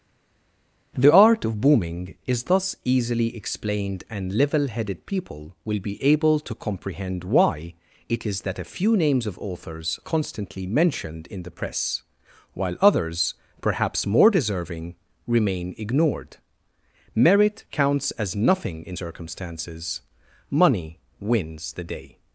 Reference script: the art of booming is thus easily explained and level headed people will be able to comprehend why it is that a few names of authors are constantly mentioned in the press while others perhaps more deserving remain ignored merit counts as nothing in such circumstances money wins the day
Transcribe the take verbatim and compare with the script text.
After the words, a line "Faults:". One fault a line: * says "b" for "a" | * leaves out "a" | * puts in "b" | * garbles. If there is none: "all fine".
the art of booming is thus easily explained and level headed people will be able to comprehend why it is that a few names of authors constantly mentioned in the press while others perhaps more deserving remain ignored merit counts as nothing in circumstances money wins the day
Faults:
* leaves out "are"
* leaves out "such"